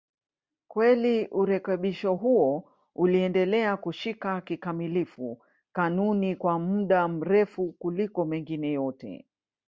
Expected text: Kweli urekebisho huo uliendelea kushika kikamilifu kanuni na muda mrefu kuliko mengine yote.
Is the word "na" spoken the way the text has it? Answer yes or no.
no